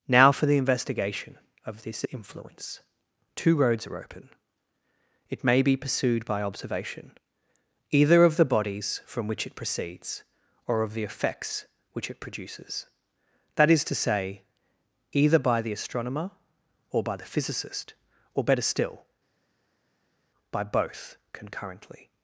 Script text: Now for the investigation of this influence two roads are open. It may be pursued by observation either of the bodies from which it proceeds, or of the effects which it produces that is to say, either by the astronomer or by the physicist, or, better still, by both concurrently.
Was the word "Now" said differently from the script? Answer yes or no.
no